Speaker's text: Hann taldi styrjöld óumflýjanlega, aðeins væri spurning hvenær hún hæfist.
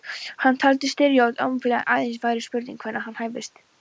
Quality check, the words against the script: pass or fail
pass